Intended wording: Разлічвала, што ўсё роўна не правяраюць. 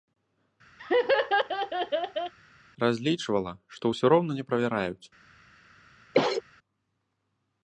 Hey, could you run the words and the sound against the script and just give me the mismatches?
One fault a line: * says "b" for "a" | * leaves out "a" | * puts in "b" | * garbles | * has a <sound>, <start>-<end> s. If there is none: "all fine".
* has a laugh, 0.8-2.3 s
* has a cough, 6.1-6.4 s